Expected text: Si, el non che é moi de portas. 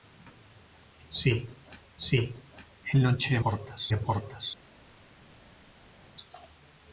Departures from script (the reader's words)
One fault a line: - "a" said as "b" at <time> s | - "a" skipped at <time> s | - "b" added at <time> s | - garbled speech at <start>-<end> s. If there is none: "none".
- "si" added at 2.1 s
- "moi" said as "portas" at 3.4 s